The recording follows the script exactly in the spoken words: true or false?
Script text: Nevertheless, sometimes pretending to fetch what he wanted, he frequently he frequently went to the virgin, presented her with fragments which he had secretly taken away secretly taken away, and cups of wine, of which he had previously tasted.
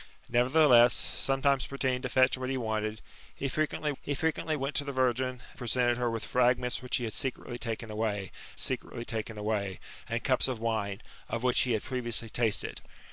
true